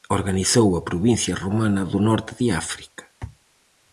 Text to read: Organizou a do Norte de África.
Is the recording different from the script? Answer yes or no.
yes